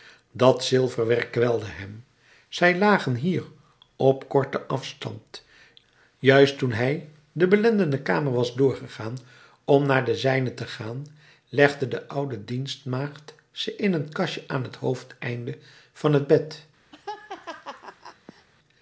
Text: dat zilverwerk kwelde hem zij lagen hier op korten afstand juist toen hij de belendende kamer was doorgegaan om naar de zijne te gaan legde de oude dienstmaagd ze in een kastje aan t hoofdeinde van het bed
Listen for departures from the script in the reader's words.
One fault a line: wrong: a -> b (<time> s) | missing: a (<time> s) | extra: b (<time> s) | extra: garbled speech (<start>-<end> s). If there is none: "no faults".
no faults